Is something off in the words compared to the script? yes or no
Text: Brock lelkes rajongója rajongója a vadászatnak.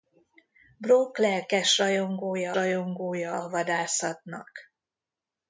no